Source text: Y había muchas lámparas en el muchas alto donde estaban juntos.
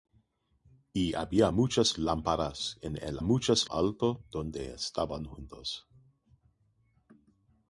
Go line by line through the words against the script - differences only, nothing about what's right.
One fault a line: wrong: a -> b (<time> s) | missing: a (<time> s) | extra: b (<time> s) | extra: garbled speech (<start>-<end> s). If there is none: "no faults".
no faults